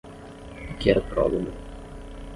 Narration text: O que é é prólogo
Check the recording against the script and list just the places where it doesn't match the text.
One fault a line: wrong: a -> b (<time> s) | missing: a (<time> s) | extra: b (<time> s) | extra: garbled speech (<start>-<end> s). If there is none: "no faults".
no faults